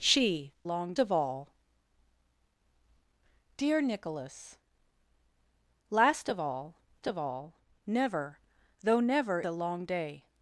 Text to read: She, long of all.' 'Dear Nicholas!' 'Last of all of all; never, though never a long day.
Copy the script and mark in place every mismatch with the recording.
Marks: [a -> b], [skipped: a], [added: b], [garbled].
She, long of all.' 'Dear Nicholas!' 'Last of all of all; never, though never a long day.